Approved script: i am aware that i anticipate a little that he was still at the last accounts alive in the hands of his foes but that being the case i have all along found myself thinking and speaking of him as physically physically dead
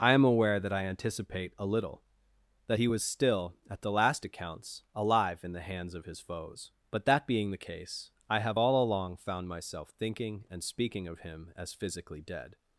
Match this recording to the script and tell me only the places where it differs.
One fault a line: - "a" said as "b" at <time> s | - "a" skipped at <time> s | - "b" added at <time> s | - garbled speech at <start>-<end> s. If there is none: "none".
- "physically" skipped at 12.2 s